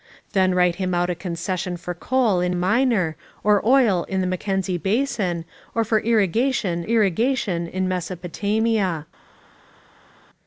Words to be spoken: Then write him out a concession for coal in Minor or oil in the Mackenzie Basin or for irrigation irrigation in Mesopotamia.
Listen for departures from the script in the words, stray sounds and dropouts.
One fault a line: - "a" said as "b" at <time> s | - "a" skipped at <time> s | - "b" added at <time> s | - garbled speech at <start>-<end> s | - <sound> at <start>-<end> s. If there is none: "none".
none